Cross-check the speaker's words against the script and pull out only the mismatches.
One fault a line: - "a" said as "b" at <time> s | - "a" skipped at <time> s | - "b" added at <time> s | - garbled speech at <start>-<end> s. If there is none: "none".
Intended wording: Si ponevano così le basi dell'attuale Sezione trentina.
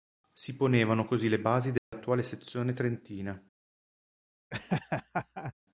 none